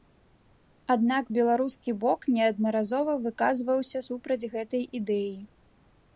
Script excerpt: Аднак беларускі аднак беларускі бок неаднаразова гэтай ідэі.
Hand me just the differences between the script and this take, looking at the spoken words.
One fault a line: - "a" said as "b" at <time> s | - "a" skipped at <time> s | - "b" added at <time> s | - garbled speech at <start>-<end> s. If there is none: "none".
- "аднак беларускі бок неаднаразова" said as "бок неаднаразова выказваўся супраць" at 2.0 s